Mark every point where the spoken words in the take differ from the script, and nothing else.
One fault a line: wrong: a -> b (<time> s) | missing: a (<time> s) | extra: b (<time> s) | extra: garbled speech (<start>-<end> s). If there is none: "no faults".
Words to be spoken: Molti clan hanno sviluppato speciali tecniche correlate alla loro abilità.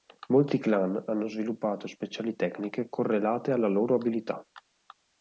no faults